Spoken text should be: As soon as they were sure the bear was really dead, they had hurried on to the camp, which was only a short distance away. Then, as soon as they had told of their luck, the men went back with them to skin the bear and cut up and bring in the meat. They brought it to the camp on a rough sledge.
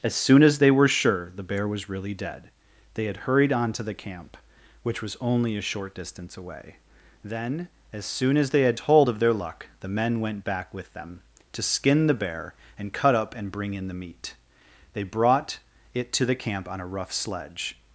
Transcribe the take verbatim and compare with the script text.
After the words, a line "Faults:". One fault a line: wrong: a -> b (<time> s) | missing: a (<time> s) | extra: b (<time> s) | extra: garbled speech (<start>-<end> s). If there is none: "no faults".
As soon as they were sure the bear was really dead, they had hurried on to the camp, which was only a short distance away. Then, as soon as they had told of their luck, the men went back with them to skin the bear and cut up and bring in the meat. They brought it to the camp on a rough sledge.
Faults:
no faults